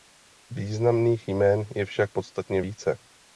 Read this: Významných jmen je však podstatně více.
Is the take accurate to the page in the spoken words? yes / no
yes